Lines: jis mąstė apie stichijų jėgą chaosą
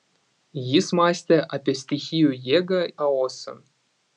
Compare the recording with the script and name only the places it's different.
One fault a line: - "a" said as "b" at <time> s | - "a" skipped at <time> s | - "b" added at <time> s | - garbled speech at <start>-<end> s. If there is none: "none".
none